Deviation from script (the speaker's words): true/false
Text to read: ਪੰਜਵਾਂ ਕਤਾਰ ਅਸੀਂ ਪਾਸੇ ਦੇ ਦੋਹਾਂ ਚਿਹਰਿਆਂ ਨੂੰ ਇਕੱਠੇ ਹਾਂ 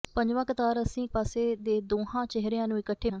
false